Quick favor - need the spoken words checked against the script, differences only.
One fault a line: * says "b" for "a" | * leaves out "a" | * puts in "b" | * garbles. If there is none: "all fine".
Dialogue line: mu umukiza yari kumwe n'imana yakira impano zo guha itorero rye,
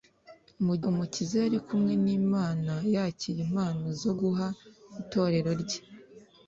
all fine